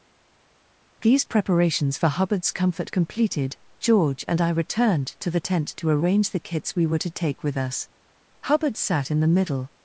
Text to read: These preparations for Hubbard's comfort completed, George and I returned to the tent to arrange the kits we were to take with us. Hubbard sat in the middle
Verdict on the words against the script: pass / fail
pass